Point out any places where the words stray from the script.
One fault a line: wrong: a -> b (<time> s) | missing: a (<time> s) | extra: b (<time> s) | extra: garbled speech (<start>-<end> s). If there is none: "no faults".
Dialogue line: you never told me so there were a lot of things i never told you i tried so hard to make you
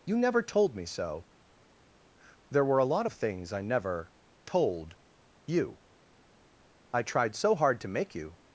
no faults